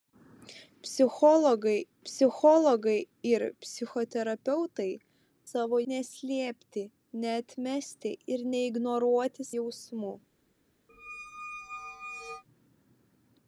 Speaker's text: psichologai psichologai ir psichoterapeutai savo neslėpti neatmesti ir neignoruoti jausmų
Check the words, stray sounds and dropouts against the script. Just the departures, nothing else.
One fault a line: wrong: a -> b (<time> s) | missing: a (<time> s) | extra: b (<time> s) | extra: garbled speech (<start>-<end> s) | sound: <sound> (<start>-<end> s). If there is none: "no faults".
sound: squeak (10.9-12.4 s)